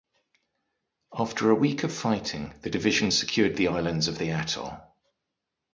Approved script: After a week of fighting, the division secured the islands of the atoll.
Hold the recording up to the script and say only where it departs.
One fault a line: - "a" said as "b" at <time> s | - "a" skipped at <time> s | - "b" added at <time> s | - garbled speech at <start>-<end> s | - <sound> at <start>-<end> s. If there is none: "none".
none